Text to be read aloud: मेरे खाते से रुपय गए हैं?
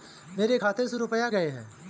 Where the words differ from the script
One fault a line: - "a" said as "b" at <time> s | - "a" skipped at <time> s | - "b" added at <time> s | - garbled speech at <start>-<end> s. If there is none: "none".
none